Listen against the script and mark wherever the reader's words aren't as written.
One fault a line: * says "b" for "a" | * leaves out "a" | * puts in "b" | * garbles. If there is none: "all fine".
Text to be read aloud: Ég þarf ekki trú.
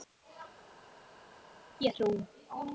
* leaves out "þarf ekki"